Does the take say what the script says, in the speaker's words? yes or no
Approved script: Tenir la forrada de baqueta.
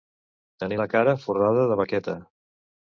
no